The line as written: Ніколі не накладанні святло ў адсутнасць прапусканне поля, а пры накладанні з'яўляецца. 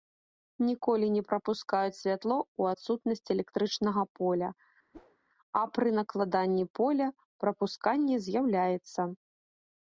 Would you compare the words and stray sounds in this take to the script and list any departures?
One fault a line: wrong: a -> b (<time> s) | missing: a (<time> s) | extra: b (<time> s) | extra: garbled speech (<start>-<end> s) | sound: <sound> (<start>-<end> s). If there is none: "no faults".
wrong: накладанні -> прапускаюць (1.3 s)
wrong: прапусканне -> электрычнага (3.4 s)
sound: whoosh (4.9-5.2 s)
extra: поля прапусканне (6.8 s)